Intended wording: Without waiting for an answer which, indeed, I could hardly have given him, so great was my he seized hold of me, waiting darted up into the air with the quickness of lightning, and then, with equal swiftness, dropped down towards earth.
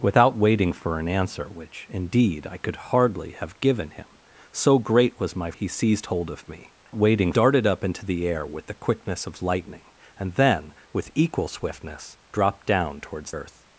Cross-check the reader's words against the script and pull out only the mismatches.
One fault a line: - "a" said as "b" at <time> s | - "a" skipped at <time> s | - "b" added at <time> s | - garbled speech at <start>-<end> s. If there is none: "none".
none